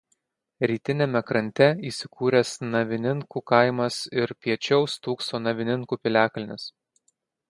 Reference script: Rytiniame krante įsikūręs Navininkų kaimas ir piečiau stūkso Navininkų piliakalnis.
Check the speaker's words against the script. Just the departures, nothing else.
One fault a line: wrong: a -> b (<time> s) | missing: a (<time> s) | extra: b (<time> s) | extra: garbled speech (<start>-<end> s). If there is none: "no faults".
no faults